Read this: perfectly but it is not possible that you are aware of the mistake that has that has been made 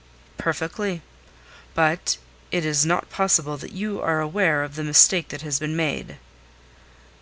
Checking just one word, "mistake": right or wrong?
right